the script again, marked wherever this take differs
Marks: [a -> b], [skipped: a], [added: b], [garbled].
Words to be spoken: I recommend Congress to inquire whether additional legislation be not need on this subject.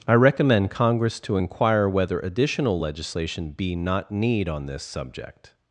I recommend Congress to inquire whether additional legislation be not need on this subject.